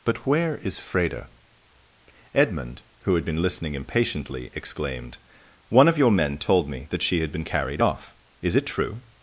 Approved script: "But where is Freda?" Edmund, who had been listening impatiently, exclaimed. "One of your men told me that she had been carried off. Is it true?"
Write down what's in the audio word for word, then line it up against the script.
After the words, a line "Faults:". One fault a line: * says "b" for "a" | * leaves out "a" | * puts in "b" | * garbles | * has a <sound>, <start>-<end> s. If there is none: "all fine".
"But where is Freda?" Edmund, who had been listening impatiently, exclaimed. "One of your men told me that she had been carried off. Is it true?"
Faults:
all fine